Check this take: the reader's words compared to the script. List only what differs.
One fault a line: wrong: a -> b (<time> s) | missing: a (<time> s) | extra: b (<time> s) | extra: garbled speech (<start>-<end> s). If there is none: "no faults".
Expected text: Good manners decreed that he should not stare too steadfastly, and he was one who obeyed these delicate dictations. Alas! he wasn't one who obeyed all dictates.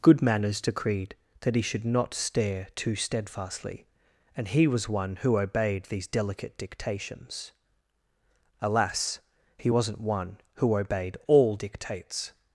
no faults